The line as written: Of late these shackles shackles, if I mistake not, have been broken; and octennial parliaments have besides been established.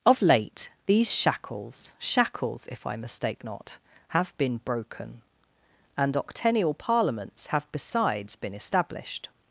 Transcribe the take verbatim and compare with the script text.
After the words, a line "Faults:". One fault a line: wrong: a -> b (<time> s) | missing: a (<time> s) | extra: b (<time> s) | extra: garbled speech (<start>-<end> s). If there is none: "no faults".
Of late these shackles shackles, if I mistake not, have been broken; and octennial parliaments have besides been established.
Faults:
no faults